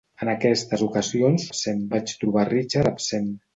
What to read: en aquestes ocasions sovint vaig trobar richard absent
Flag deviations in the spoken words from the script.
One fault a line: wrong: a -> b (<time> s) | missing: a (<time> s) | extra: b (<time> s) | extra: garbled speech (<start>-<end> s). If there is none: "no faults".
wrong: sovint -> absent (1.5 s)